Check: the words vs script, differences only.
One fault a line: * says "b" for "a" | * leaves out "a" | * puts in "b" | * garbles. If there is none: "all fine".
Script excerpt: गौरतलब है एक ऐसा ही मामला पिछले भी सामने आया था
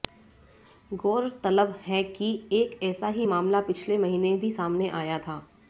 * puts in "कि"
* puts in "महीने"